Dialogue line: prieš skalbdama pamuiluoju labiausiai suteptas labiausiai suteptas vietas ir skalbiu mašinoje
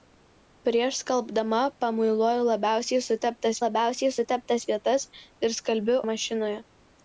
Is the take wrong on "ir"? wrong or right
right